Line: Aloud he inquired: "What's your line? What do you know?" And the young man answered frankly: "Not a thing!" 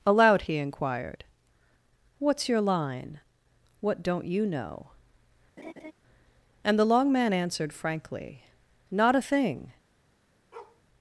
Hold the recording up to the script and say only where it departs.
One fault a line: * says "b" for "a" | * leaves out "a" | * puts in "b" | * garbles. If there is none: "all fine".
* says "don't" for "do"
* says "long" for "young"